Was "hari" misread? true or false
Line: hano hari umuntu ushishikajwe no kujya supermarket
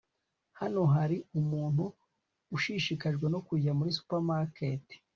false